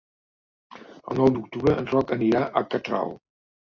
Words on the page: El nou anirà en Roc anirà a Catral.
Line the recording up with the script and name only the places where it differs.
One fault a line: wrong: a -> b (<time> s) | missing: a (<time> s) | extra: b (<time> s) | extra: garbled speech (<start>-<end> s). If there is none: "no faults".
wrong: anirà -> d'octubre (1.3 s)